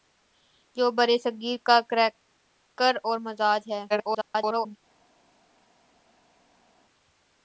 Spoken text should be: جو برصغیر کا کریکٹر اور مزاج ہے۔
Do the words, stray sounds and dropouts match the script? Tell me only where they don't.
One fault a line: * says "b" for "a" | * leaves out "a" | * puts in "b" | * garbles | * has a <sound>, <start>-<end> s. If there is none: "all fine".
* garbles